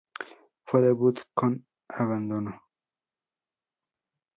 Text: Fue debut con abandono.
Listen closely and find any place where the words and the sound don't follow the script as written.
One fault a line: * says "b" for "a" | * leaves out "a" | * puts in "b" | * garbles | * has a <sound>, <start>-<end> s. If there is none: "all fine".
all fine